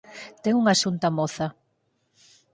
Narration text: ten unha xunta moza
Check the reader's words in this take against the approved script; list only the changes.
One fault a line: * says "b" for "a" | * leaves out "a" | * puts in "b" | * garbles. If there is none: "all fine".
all fine